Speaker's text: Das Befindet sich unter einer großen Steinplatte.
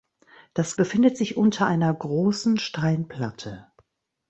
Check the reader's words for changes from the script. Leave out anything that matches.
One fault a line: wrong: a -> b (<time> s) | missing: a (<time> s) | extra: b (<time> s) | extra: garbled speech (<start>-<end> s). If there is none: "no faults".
no faults